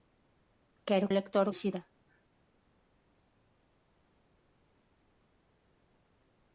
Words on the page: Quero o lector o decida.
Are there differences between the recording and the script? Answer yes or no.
no